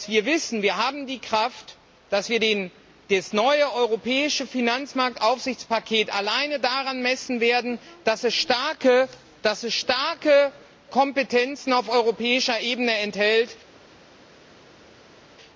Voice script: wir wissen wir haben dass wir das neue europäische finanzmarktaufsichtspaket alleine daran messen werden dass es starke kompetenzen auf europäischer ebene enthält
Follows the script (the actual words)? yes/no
no